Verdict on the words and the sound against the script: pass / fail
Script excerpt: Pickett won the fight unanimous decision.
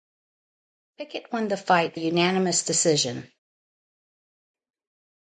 pass